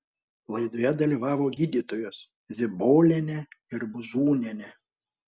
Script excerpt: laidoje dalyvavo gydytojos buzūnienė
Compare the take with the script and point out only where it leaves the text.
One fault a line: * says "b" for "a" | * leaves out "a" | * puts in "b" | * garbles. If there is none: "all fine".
* puts in "zibolienė ir"